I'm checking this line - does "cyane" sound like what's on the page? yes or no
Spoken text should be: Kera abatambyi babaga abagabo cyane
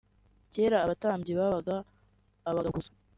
no